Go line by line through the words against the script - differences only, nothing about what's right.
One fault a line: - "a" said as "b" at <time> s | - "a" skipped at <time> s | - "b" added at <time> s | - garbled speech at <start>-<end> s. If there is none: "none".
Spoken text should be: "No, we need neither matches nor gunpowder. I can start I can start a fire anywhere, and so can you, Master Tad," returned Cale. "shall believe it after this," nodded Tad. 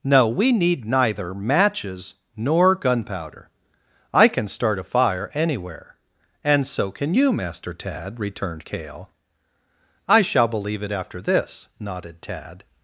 - "I can start" skipped at 4.8 s
- "I" added at 10.1 s